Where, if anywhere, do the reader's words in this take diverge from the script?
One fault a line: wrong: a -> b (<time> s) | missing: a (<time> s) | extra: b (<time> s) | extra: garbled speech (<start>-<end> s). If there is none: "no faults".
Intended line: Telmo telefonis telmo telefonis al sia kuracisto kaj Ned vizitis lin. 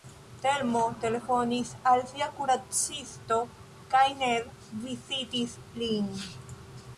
missing: telmo telefonis (1.7 s)